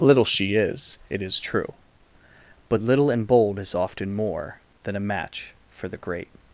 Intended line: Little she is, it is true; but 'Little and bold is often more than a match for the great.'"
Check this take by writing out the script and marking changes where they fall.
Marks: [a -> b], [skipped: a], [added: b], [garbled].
Little she is, it is true; but 'Little and bold is often more than a match for the great.'"